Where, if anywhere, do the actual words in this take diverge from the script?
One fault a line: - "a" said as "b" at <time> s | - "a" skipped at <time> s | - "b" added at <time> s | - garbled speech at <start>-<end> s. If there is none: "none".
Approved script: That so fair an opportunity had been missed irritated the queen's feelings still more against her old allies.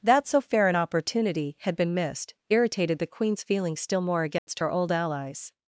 none